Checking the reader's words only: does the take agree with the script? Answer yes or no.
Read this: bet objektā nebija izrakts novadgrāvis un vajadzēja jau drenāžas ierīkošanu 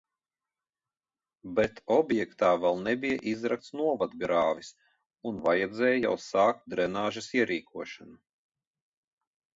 no